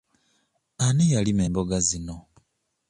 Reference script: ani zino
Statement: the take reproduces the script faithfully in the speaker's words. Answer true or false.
false